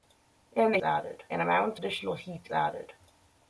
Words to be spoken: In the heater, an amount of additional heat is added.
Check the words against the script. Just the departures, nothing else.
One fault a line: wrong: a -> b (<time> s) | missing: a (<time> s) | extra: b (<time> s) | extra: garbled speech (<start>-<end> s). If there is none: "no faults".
wrong: heater -> added (0.8 s)
missing: of (1.8 s)
missing: is (2.5 s)